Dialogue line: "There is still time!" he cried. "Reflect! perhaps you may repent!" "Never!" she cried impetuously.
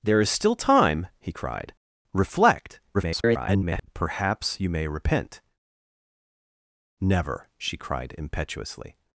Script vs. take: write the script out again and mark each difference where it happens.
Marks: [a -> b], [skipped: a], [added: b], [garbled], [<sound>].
"There is still time!" he cried. "Reflect! [garbled] perhaps you may repent!" "Never!" she cried impetuously.